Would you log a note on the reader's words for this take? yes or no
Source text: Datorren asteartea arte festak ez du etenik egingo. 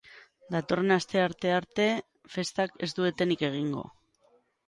no